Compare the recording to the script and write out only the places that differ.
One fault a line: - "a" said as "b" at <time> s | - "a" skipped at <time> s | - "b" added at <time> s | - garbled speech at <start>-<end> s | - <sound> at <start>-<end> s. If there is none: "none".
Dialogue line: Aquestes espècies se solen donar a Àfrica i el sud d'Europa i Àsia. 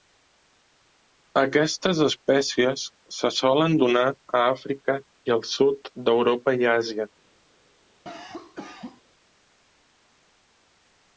- cough at 8.1-9.0 s